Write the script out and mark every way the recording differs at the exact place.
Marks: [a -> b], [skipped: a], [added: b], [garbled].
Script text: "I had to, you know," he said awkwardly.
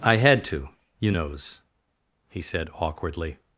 "I had to, you [know," -> knows] he said awkwardly.